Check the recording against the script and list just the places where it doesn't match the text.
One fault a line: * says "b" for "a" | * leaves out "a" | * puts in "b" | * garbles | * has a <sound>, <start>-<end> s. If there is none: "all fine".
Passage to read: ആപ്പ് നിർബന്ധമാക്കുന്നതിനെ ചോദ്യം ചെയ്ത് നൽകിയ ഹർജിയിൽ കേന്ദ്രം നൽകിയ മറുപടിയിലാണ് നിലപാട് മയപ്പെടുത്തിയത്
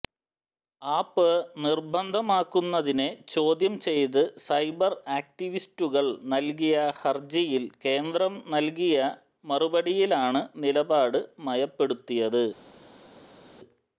* puts in "സൈബർ ആക്ടിവിസ്റ്റുകൾ"